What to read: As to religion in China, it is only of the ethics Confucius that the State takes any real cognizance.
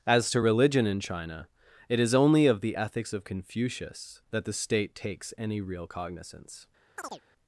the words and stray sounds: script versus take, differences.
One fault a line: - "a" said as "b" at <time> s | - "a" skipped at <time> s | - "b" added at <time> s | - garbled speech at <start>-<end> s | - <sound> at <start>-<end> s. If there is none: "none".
- "of" added at 3.1 s
- chirp at 7.0-7.2 s